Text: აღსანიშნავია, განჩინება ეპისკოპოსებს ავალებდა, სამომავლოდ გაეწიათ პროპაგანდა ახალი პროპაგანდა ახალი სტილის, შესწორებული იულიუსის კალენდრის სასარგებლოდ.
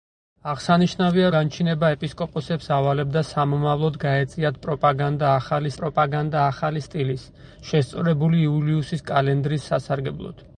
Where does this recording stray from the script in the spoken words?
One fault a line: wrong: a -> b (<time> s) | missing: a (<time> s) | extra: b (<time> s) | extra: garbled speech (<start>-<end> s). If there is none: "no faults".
no faults